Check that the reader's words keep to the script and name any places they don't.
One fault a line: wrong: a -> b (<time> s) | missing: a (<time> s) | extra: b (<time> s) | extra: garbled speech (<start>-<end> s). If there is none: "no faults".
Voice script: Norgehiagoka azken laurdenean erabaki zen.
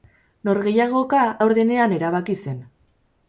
missing: azken (1.2 s)